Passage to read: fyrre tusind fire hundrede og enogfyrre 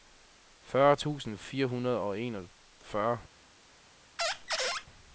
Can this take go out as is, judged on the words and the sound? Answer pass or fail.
fail